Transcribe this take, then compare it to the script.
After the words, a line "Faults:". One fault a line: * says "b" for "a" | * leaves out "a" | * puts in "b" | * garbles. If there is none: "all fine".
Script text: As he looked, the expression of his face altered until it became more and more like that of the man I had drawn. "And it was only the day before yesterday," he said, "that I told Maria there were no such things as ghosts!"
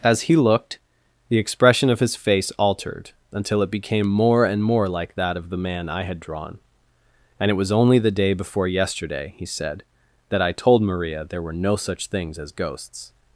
As he looked, the expression of his face altered until it became more and more like that of the man I had drawn. "And it was only the day before yesterday," he said, "that I told Maria there were no such things as ghosts!"
Faults:
all fine